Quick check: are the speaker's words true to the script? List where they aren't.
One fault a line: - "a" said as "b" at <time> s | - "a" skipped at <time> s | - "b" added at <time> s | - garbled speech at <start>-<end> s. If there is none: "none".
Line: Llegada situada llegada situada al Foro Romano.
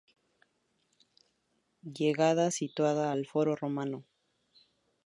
- "llegada situada" skipped at 3.1 s